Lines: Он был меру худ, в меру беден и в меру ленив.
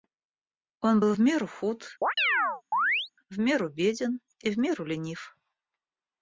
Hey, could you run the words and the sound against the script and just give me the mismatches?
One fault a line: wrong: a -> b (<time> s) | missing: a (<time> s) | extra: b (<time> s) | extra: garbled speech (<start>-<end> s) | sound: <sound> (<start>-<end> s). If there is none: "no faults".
extra: в (1.1 s)
sound: chirp (2.0-3.1 s)